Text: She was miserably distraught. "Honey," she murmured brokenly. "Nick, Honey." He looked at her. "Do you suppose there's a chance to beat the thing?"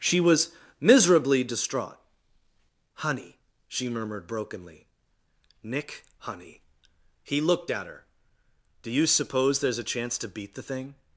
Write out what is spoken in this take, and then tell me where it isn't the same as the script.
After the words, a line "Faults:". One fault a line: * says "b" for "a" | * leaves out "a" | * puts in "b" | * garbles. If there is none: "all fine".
She was miserably distraught. "Honey," she murmured brokenly. "Nick, Honey." He looked at her. "Do you suppose there's a chance to beat the thing?"
Faults:
all fine